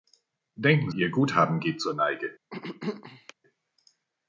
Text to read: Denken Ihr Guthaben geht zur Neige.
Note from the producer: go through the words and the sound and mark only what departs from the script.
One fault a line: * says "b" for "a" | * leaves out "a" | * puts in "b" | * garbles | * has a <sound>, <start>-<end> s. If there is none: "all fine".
* has a throat clearing, 2.5-3.3 s